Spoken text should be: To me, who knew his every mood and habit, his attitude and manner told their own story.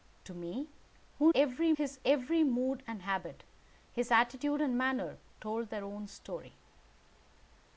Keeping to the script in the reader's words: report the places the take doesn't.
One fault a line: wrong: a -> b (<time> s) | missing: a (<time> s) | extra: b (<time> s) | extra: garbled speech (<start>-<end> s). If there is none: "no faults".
wrong: knew -> every (1.4 s)